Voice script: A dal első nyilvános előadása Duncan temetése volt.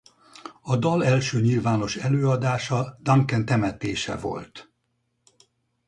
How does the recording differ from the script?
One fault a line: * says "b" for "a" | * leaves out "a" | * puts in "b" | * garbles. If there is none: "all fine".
all fine